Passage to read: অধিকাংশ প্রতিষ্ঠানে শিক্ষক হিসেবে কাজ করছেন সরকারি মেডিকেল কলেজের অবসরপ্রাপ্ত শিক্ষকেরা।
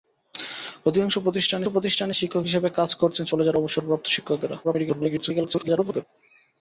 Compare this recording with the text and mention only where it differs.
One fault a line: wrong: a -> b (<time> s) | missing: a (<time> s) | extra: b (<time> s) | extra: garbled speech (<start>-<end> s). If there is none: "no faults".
extra: প্রতিষ্ঠানে (1.7 s)
missing: সরকারি মেডিকেল (3.2 s)
extra: garbled speech (4.6-6.0 s)